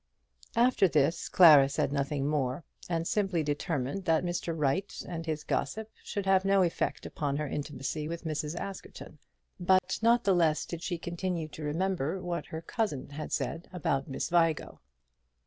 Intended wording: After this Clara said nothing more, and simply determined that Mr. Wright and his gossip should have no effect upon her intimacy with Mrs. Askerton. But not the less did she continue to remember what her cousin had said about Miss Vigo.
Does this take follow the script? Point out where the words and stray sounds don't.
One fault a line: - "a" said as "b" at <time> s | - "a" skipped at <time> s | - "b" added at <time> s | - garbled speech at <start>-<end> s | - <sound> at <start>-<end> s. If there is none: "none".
- dropout at 9.8-9.8 s